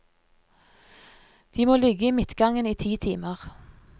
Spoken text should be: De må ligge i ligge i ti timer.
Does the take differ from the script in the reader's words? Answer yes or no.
yes